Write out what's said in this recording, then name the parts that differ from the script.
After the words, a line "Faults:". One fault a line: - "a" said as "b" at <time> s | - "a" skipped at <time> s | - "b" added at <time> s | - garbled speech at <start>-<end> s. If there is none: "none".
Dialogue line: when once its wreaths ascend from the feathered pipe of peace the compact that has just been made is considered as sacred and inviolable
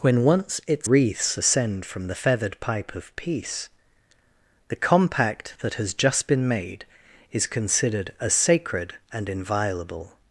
when once its wreaths ascend from the feathered pipe of peace the compact that has just been made is considered as sacred and inviolable
Faults:
none